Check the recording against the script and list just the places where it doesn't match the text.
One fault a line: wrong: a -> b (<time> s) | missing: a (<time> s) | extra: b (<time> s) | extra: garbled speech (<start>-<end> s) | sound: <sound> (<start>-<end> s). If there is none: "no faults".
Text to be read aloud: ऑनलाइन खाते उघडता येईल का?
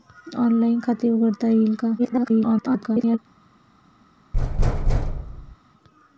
extra: garbled speech (2.0-3.2 s)
sound: thud (4.3-5.6 s)